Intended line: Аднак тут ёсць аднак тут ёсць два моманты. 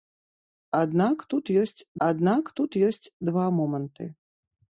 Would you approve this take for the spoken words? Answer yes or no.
yes